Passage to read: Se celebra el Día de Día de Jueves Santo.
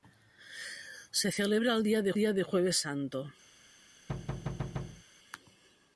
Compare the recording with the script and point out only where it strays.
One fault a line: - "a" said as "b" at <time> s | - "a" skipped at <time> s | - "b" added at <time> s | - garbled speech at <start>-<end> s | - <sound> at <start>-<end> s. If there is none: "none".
- thud at 4.1-5.0 s